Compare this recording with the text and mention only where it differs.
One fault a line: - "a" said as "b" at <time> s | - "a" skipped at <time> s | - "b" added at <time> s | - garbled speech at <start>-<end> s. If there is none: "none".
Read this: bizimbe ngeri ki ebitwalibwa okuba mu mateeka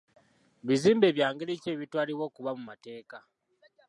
- "bya" added at 1.1 s